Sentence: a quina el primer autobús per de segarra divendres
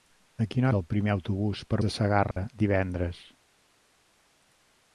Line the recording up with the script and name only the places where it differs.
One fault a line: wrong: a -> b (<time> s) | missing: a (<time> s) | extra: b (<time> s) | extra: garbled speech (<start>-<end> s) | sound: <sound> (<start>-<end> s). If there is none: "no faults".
sound: dropout (2.3-2.4 s)